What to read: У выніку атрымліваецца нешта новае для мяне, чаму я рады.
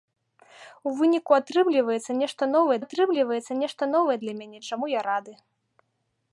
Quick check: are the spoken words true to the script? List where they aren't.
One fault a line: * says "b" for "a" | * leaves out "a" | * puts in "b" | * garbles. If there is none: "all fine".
* puts in "атрымліваецца нешта новае"